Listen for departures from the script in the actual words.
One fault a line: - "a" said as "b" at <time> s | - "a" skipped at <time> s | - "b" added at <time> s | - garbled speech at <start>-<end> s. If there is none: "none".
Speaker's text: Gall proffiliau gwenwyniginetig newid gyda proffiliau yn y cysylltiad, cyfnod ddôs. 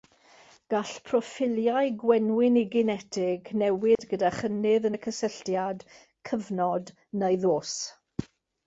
- "proffiliau" said as "chynnydd" at 4.4 s
- "neu" added at 7.2 s